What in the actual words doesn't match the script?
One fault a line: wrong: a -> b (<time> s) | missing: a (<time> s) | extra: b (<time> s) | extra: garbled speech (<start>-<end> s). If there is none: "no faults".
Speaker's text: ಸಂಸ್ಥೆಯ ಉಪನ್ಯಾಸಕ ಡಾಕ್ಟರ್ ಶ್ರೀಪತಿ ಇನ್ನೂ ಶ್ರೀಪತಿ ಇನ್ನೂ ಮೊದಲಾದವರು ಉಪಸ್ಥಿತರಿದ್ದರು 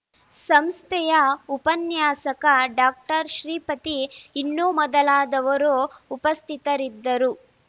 missing: ಶ್ರೀಪತಿ ಇನ್ನೂ (4.7 s)